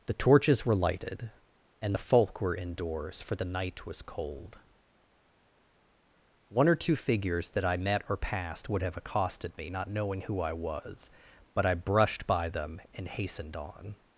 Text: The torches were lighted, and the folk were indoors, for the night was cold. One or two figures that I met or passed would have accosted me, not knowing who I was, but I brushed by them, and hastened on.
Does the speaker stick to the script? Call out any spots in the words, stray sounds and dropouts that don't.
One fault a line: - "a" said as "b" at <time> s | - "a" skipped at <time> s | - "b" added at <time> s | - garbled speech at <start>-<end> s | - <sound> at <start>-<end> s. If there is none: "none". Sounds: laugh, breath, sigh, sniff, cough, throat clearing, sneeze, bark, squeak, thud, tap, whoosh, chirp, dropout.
none